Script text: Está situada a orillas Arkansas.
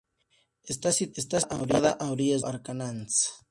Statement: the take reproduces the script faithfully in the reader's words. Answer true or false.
true